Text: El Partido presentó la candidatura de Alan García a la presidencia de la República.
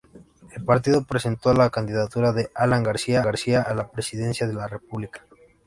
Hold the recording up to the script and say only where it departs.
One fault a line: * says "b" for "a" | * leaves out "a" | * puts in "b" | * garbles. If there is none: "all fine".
* puts in "García"